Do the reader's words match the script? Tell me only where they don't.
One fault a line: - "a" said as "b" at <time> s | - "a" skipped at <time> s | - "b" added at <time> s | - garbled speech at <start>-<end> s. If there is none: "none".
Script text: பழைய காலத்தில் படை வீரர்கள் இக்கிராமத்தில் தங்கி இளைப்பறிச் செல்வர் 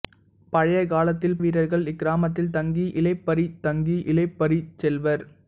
- "படை" skipped at 1.4 s
- "தங்கி இளைப்பறிச்" added at 3.6 s